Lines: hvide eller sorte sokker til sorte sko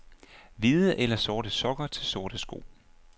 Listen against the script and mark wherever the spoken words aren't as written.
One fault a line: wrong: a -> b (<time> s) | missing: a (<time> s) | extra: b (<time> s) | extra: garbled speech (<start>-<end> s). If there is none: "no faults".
no faults